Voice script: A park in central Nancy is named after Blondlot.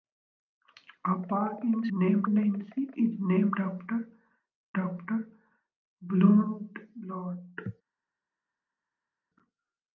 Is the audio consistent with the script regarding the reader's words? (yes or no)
no